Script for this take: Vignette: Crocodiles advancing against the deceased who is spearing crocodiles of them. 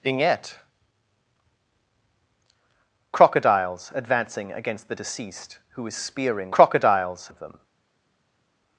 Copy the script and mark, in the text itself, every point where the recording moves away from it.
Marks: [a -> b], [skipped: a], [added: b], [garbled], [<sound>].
Vignette: Crocodiles advancing against the deceased who is spearing crocodiles of them.